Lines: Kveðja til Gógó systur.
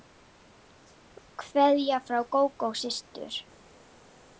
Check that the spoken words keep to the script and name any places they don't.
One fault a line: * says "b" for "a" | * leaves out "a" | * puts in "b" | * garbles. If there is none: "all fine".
* says "frá" for "til"